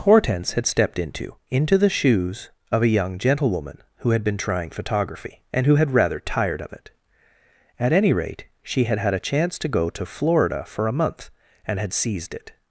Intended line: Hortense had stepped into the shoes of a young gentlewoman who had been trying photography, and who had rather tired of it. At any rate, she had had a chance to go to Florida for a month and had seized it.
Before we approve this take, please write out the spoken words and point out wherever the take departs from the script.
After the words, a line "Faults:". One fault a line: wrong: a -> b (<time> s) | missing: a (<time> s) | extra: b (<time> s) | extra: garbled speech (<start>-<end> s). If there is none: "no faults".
Hortense had stepped into into the shoes of a young gentlewoman who had been trying photography, and who had rather tired of it. At any rate, she had had a chance to go to Florida for a month and had seized it.
Faults:
extra: into (1.5 s)